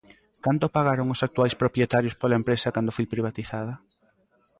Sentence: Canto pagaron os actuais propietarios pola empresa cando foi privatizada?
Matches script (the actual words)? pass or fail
pass